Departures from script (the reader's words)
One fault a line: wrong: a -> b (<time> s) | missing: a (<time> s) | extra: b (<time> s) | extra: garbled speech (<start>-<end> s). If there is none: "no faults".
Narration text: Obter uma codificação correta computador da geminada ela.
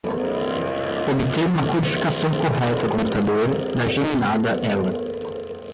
no faults